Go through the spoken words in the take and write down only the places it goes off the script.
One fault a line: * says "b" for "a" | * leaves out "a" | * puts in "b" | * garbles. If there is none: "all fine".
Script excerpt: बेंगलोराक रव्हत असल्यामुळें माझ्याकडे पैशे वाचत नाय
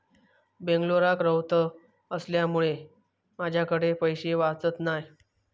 all fine